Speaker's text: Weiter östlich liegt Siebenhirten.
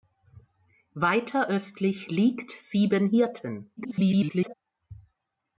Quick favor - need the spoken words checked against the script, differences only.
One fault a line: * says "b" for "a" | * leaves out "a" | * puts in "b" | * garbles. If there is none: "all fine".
* garbles